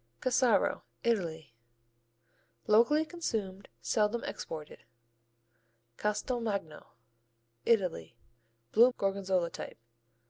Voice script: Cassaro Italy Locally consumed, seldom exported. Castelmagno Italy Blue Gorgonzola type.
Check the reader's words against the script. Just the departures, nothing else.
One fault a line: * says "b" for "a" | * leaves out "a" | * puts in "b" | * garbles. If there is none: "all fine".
all fine